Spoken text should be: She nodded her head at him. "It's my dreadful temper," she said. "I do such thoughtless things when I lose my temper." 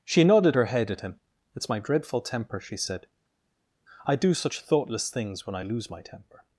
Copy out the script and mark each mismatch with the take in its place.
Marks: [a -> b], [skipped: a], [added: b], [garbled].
She nodded her head at him. "It's my dreadful temper," she said. "I do such thoughtless things when I lose my temper."